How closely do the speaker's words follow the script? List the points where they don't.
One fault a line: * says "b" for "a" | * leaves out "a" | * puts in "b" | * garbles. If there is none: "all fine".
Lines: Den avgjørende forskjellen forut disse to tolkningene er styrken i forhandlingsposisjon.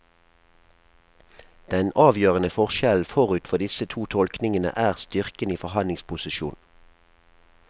* puts in "for"